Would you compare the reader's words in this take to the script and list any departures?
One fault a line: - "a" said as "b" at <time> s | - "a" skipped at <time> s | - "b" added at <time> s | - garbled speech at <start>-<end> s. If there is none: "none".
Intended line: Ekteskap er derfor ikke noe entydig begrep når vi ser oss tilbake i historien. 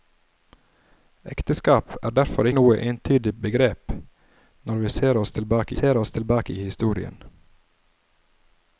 - "ikke" skipped at 2.5 s
- "ser oss tilbake" added at 5.7 s